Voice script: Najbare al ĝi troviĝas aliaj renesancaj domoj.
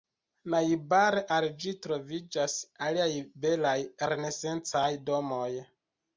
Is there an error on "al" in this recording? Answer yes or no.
no